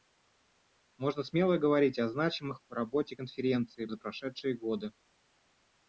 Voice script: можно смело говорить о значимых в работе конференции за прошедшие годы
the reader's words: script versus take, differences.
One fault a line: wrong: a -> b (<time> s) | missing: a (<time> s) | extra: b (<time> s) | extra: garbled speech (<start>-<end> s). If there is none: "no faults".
no faults